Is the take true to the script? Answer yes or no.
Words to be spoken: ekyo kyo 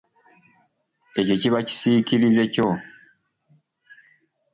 no